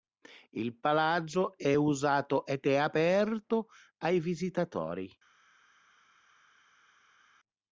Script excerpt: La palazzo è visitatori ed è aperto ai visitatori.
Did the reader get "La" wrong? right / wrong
wrong